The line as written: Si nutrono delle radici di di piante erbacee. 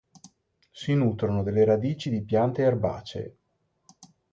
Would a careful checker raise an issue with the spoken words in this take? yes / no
yes